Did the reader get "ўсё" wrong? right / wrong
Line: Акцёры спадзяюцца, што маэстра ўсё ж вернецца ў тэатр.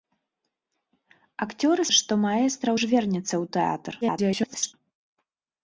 wrong